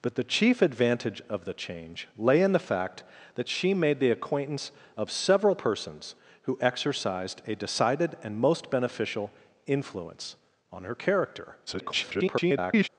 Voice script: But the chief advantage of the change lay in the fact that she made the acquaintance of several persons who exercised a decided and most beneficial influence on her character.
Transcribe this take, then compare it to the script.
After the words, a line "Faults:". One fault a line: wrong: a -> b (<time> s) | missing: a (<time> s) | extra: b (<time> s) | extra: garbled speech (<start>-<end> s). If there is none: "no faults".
But the chief advantage of the change lay in the fact that she made the acquaintance of several persons who exercised a decided and most beneficial influence on her character. [garbled]
Faults:
extra: garbled speech (11.7-12.9 s)